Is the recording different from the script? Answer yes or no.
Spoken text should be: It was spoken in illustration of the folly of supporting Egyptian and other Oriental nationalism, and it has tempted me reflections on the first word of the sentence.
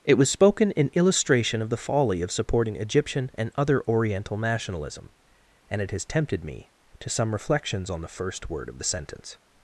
yes